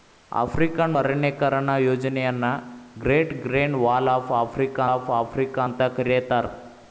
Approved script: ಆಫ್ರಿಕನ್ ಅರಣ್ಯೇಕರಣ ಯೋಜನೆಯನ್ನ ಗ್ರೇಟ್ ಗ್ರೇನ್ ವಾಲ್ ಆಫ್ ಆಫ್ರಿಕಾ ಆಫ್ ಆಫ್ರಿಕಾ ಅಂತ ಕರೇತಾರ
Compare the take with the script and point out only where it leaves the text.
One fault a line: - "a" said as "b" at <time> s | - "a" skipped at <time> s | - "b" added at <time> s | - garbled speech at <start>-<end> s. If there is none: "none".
none